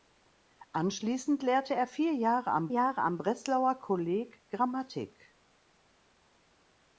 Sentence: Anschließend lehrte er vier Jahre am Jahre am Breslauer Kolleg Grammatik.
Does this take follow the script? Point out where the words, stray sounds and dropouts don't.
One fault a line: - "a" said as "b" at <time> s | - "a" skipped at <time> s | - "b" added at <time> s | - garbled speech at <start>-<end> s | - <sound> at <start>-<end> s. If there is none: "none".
none